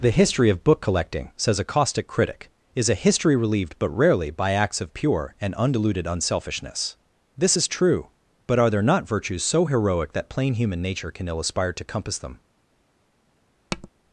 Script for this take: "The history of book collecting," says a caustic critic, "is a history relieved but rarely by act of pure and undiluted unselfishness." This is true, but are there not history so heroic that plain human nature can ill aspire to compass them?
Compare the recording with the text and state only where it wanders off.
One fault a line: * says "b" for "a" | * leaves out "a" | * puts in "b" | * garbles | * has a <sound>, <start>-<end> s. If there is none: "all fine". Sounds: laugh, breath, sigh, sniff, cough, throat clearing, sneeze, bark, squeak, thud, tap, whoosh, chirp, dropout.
* says "acts" for "act"
* says "virtues" for "history"
* has a tap, 13.7-13.9 s